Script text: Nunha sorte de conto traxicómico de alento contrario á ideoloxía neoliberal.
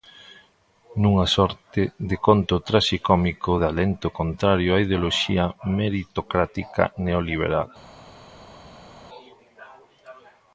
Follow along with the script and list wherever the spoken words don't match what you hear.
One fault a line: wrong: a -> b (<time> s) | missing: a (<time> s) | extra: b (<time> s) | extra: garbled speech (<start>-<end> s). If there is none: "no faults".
extra: meritocrática (5.8 s)